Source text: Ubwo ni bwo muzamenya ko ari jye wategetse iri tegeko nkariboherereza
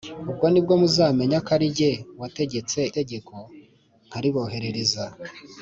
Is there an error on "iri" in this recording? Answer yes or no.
yes